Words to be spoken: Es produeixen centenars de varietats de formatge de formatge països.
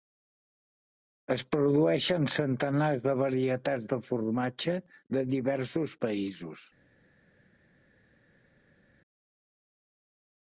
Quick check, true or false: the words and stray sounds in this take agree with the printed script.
false